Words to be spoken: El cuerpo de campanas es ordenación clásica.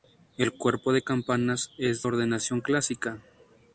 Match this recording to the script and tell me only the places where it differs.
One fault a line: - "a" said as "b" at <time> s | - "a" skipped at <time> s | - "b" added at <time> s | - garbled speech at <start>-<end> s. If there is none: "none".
none